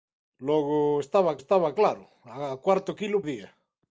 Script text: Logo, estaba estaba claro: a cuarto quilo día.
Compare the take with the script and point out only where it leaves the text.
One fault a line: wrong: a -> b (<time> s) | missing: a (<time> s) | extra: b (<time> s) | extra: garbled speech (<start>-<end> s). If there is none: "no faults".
no faults